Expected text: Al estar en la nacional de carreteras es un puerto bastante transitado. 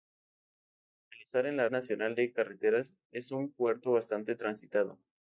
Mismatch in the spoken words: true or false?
false